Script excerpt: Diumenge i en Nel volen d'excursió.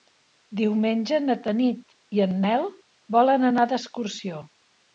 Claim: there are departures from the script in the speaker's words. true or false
true